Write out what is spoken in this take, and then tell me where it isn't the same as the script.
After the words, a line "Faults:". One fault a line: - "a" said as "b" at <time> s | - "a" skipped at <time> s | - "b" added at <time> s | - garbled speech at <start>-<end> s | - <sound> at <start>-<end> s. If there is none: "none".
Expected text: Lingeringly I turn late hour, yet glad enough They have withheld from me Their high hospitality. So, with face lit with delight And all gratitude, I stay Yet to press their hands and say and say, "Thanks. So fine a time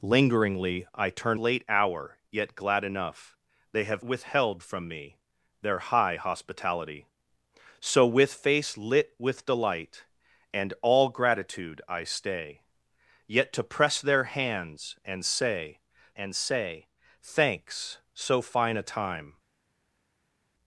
Lingeringly I turn late hour, yet glad enough They have withheld from me Their high hospitality. So, with face lit with delight And all gratitude, I stay Yet to press their hands and say and say, "Thanks. So fine a time
Faults:
none